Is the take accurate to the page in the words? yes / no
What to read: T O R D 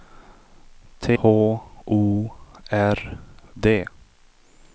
yes